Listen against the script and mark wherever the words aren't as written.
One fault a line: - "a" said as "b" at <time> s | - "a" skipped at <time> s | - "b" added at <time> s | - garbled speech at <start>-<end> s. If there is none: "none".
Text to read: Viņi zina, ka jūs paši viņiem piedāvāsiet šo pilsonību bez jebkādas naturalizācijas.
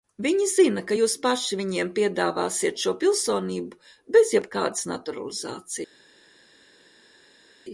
none